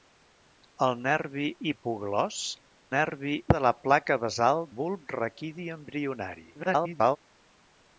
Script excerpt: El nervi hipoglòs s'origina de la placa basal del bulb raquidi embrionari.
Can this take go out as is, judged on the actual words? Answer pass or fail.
fail